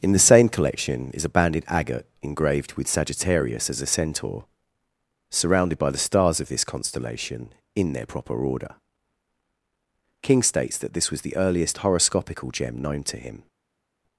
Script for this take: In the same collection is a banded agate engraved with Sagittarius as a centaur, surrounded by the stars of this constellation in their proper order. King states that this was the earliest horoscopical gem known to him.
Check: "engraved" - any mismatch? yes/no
no